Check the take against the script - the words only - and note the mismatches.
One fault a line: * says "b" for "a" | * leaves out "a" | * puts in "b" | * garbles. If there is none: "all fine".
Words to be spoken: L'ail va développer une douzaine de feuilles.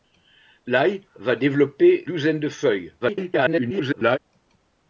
* leaves out "une"
* garbles